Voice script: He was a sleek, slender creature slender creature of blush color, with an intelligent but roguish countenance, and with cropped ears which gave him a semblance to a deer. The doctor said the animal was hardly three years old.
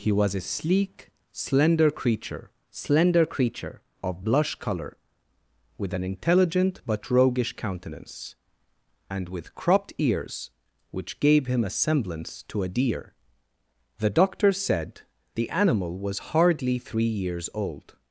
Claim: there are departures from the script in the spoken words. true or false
false